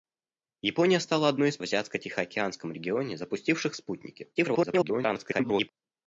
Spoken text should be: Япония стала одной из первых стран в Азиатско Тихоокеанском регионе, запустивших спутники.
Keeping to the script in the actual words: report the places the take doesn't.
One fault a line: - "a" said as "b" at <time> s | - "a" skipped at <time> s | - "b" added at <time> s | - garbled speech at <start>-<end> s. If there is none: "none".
- "первых стран" skipped at 1.6 s
- garbled speech at 4.4-5.7 s